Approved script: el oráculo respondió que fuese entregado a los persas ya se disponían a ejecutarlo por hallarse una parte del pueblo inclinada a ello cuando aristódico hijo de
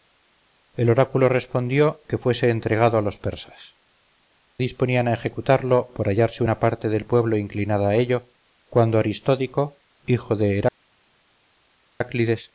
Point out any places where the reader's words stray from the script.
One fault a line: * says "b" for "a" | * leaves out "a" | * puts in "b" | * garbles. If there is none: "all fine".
* leaves out "ya se"